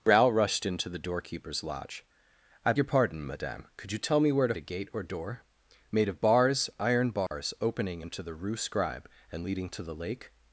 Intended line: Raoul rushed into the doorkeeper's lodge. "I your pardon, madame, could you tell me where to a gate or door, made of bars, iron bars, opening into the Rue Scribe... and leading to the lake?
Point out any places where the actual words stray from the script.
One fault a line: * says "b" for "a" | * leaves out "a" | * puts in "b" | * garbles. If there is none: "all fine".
all fine